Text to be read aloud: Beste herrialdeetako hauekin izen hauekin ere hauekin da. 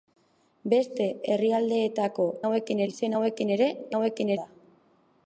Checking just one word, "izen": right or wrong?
right